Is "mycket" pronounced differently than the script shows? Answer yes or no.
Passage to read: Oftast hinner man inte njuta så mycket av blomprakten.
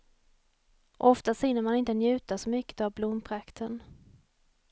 no